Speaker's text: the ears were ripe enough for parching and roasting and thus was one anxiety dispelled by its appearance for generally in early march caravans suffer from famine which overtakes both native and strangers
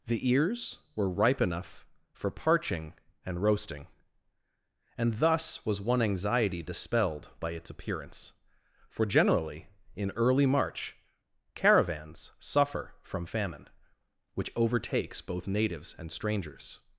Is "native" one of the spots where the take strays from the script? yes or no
yes